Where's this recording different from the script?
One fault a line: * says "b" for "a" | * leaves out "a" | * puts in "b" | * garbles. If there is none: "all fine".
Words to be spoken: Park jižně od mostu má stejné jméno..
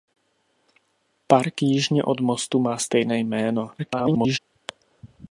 * garbles